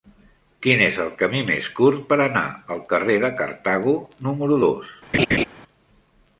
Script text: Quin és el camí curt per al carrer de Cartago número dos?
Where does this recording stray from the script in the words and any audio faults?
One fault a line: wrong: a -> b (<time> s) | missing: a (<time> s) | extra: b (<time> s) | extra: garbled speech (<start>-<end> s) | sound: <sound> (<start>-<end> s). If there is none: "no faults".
extra: més (1.5 s)
extra: anar (2.2 s)
sound: laugh (5.1-5.4 s)